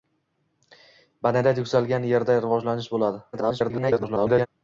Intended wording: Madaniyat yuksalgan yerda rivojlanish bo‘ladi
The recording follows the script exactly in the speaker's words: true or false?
false